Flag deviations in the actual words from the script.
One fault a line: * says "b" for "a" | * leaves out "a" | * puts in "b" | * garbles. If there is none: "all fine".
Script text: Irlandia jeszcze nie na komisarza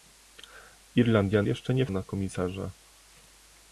all fine